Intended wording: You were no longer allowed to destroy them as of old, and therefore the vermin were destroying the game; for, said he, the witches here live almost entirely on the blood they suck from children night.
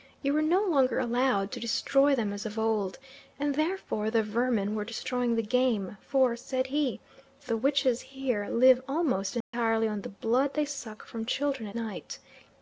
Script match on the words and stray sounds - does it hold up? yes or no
no